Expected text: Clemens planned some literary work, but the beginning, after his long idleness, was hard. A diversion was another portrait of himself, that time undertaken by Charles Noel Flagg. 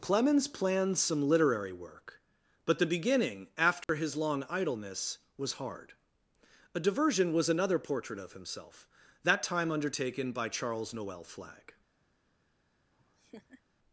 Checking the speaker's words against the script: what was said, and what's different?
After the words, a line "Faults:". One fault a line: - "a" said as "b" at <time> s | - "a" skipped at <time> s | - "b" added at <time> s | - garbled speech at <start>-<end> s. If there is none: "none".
Clemens planned some literary work, but the beginning, after his long idleness, was hard. A diversion was another portrait of himself, that time undertaken by Charles Noel Flagg.
Faults:
none